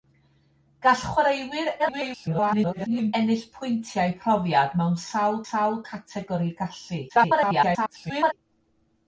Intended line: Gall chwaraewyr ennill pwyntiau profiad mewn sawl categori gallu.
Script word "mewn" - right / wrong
right